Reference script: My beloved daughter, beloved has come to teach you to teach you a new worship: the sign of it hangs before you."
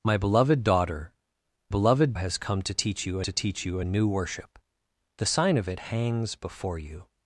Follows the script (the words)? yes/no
yes